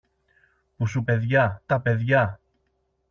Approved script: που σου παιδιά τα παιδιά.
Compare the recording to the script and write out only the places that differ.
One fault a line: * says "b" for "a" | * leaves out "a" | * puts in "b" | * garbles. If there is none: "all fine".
all fine